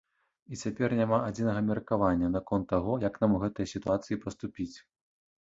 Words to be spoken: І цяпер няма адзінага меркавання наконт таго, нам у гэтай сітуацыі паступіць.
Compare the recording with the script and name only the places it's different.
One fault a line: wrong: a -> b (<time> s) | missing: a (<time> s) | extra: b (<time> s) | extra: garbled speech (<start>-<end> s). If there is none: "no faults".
extra: як (3.1 s)